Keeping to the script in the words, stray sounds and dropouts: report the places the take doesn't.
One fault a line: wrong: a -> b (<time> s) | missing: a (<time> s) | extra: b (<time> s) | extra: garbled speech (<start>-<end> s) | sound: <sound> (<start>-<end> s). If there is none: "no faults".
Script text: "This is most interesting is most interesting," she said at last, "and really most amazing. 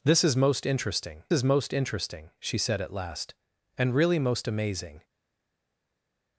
no faults